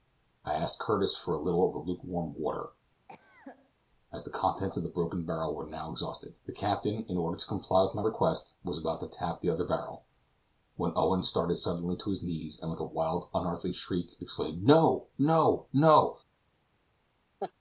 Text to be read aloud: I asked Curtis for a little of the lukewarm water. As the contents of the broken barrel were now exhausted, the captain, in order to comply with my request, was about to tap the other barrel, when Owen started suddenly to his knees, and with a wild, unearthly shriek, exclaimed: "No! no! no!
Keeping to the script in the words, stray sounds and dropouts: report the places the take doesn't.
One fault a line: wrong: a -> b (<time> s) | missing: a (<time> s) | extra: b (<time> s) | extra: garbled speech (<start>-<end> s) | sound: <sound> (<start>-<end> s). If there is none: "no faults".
sound: cough (3.1-3.7 s)
sound: laugh (17.4-17.5 s)